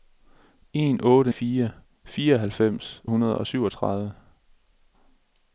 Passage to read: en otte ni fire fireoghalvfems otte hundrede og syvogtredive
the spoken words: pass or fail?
fail